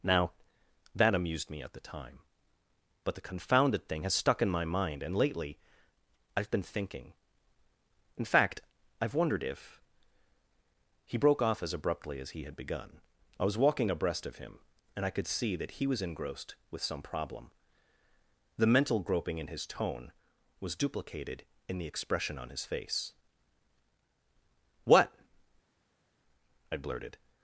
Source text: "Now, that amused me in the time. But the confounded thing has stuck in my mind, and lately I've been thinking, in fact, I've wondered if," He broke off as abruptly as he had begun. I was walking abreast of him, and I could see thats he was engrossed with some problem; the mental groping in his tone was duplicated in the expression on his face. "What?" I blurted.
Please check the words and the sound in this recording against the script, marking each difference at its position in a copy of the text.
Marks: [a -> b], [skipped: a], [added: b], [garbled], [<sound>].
"Now, that amused me [in -> at] the time. But the confounded thing has stuck in my mind, and lately I've been thinking, in fact, I've wondered if," He broke off as abruptly as he had begun. I was walking abreast of him, and I could see [thats -> that] he was engrossed with some problem; the mental groping in his tone was duplicated in the expression on his face. "What?" I blurted.